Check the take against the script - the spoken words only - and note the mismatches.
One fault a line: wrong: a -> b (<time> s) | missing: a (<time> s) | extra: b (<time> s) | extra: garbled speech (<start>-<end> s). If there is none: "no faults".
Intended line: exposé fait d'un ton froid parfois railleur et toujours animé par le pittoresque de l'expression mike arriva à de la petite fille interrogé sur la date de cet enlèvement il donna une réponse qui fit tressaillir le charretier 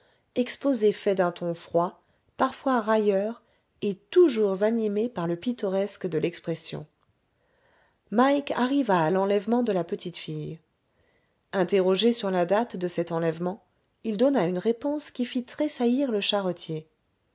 extra: l'enlèvement (9.1 s)